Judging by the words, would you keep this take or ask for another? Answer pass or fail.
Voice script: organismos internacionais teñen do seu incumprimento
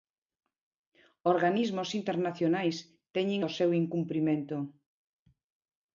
pass